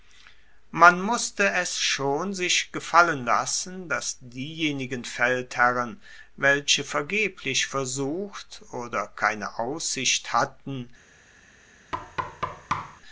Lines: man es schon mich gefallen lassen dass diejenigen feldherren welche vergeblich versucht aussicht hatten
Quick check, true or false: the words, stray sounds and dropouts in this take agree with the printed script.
false